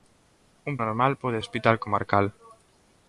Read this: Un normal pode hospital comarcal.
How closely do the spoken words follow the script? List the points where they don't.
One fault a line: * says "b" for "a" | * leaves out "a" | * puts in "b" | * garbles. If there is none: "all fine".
all fine